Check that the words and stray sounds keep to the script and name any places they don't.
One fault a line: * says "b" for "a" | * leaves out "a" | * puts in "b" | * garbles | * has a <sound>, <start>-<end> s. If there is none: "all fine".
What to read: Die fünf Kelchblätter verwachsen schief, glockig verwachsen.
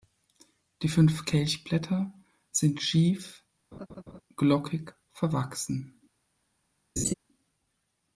* says "sind" for "verwachsen"
* has a laugh, 3.7-4.2 s
* has a laugh, 7.0-7.1 s